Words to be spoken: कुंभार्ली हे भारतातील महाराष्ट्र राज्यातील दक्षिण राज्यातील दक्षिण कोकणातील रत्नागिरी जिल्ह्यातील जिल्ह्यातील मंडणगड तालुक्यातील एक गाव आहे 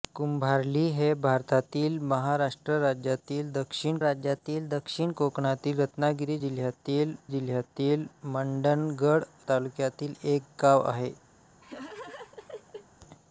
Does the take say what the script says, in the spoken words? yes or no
yes